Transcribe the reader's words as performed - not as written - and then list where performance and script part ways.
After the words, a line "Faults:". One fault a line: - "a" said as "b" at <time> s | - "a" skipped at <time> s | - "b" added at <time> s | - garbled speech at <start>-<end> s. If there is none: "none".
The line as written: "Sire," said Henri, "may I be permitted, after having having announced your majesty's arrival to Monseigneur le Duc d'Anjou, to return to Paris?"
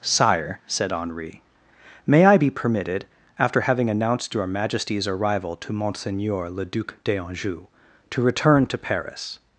"Sire," said Henri, "may I be permitted, after having announced your majesty's arrival to Monseigneur le Duc d'Anjou, to return to Paris?"
Faults:
- "having" skipped at 3.9 s